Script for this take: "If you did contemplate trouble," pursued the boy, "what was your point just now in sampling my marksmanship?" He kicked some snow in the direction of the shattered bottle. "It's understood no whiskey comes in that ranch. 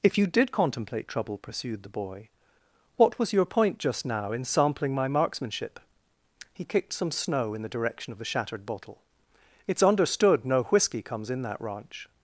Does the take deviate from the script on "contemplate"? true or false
false